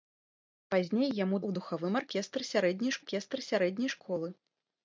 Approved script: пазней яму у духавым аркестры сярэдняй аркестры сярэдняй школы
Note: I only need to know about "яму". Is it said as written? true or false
true